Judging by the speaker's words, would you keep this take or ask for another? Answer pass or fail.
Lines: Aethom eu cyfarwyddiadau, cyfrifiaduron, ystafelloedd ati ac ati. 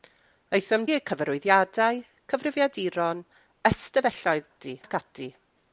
pass